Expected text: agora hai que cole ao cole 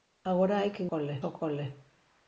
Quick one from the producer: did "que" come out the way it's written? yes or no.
yes